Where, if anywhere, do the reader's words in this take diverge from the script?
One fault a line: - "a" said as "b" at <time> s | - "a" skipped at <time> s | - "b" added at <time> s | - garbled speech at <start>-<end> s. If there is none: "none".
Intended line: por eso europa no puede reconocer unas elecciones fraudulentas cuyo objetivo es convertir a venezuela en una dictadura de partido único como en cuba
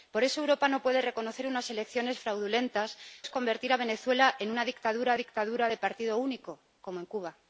- "cuyo objetivo" skipped at 3.0 s
- "dictadura" added at 5.2 s